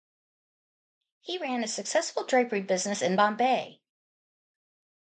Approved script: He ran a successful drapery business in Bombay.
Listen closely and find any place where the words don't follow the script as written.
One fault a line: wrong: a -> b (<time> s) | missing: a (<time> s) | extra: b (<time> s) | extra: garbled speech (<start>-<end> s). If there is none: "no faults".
no faults